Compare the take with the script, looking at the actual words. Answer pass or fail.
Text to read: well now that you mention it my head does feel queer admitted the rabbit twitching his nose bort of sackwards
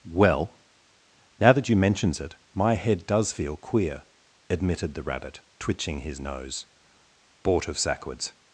fail